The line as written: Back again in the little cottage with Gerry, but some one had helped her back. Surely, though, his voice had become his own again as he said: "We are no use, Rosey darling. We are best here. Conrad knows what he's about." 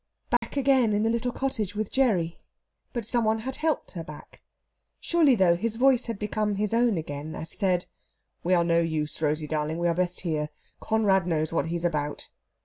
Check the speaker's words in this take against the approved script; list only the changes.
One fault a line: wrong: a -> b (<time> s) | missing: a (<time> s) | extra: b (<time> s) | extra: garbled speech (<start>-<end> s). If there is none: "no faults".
missing: he (7.5 s)